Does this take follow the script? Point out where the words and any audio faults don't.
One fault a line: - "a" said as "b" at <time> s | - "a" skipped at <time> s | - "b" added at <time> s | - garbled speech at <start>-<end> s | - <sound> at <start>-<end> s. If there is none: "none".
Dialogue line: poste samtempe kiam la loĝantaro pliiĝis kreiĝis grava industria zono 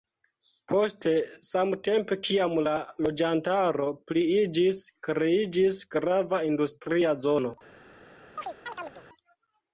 - chirp at 8.4-9.1 s